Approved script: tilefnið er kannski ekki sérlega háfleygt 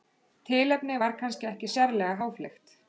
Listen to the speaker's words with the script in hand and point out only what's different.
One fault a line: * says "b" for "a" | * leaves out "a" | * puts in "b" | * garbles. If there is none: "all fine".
* says "var" for "er"